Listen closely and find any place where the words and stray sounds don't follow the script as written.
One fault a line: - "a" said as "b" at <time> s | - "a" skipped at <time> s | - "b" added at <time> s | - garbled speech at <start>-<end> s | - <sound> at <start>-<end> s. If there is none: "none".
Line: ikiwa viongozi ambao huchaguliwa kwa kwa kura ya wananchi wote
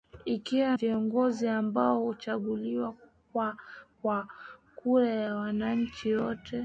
none